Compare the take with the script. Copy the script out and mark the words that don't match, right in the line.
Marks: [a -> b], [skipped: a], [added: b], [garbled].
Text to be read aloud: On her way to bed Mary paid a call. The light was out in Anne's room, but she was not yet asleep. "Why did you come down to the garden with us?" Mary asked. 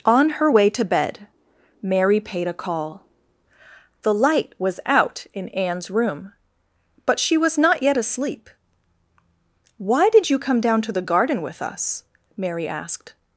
On her way to bed Mary paid a call. The light was out in Anne's room, but she was not yet asleep. "Why did you come down to the garden with us?" Mary asked.